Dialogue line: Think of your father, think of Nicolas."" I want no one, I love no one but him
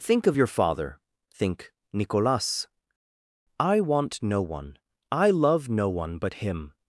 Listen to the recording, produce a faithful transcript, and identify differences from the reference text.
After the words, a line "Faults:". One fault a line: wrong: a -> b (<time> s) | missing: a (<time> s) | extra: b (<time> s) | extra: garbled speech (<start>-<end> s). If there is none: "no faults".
Think of your father, think Nicolas."" I want no one, I love no one but him
Faults:
missing: of (1.7 s)